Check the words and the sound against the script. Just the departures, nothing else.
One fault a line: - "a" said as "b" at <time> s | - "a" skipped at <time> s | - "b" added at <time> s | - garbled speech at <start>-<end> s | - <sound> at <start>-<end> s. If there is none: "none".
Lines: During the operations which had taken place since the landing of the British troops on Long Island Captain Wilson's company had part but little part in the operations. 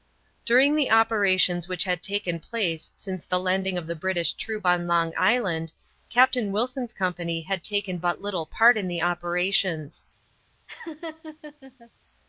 - "part" said as "taken" at 7.6 s
- laugh at 10.7-11.9 s